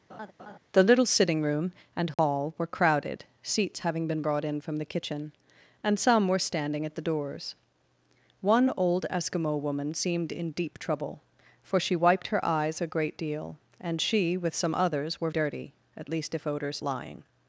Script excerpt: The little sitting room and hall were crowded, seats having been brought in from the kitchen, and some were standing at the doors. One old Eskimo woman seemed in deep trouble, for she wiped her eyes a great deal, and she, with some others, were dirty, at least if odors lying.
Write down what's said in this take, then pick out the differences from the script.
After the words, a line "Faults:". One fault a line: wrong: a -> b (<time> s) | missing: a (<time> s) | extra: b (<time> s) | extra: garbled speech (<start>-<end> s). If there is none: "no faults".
The little sitting room and hall were crowded, seats having been brought in from the kitchen, and some were standing at the doors. One old Eskimo woman seemed in deep trouble, for she wiped her eyes a great deal, and she, with some others, were dirty, at least if odors lying.
Faults:
no faults